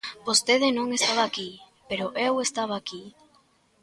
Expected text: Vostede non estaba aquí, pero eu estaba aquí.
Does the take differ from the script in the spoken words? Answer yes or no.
no